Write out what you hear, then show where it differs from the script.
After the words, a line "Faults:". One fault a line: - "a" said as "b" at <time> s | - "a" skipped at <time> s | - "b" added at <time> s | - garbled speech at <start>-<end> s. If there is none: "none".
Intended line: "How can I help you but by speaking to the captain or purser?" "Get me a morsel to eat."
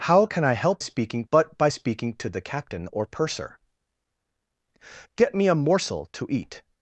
"How can I help speaking but by speaking to the captain or purser?" "Get me a morsel to eat."
Faults:
- "you" said as "speaking" at 0.8 s